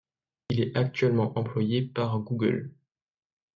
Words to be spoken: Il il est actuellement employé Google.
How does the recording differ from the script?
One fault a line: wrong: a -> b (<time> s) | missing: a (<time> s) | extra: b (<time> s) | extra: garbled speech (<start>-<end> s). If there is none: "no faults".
missing: il (0.6 s)
extra: par (1.8 s)